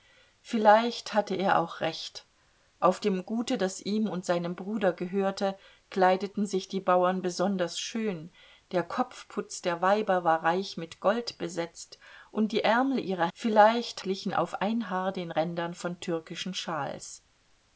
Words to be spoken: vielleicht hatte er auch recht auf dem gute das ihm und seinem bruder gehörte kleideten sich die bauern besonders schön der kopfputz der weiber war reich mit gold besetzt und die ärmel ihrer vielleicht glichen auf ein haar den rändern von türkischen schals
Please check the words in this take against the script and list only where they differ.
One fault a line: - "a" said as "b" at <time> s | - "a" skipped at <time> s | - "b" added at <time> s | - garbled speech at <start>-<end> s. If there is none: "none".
none